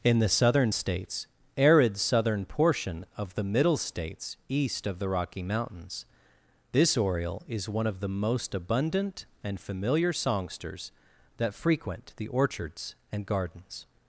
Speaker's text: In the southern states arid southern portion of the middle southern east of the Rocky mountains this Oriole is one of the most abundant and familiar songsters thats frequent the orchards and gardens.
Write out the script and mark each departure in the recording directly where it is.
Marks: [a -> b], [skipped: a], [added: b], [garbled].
In the southern states arid southern portion of the middle [southern -> states] east of the Rocky mountains this Oriole is one of the most abundant and familiar songsters [thats -> that] frequent the orchards and gardens.